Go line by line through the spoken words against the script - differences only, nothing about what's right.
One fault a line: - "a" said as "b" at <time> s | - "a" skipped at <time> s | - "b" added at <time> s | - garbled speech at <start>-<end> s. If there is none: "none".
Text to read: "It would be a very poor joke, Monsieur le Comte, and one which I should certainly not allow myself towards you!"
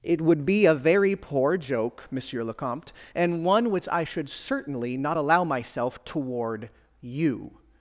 - "towards" said as "toward" at 6.0 s